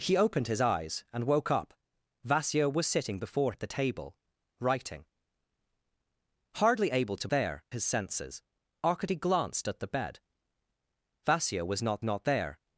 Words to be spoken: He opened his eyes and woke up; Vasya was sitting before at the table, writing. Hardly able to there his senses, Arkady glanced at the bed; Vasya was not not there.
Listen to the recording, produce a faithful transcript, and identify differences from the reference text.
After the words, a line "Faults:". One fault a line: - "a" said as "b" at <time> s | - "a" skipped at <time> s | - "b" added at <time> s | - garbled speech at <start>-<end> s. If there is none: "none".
He opened his eyes and woke up; Vasya was sitting before at the table, writing. Hardly able to there his senses, Arkady glanced at the bed; Vasya was not not there.
Faults:
none